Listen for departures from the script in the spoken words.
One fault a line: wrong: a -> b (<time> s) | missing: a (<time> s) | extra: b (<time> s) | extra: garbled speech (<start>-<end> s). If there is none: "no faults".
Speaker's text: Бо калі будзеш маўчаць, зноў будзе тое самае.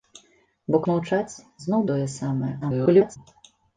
missing: калі будзеш (0.8 s)
missing: будзе (1.8 s)
extra: garbled speech (2.6-3.2 s)